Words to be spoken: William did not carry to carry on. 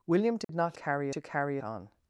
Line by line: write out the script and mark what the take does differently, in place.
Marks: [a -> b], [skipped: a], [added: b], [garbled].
William did not carry to carry on.